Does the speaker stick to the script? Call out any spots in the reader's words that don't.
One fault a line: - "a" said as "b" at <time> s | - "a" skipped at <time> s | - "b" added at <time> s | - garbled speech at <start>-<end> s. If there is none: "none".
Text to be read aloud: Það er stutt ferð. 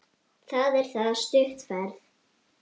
- "það" added at 0.9 s